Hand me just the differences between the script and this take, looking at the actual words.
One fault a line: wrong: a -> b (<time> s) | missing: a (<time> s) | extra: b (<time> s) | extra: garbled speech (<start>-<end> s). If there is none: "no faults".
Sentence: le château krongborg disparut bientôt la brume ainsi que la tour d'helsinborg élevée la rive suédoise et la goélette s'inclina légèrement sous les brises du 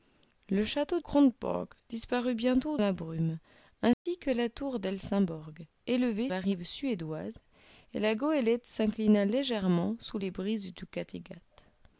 no faults